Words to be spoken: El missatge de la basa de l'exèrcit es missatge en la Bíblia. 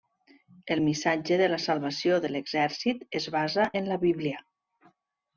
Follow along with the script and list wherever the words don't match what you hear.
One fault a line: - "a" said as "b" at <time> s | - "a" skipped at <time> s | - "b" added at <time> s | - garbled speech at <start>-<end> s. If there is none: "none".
- "basa" said as "salvació" at 1.6 s
- "missatge" said as "basa" at 3.4 s